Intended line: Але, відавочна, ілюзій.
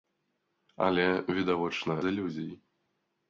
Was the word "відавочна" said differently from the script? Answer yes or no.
no